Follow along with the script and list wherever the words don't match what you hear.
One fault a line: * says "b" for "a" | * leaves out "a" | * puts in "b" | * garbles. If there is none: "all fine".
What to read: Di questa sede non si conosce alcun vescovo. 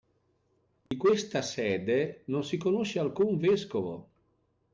all fine